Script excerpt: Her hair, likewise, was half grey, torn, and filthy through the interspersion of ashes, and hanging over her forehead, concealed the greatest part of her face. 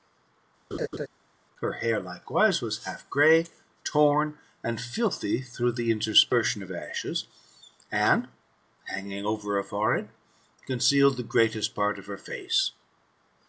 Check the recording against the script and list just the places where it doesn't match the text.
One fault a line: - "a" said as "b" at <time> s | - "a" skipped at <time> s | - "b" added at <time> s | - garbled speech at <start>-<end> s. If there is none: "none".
none